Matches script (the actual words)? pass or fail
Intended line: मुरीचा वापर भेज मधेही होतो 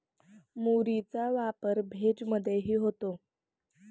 pass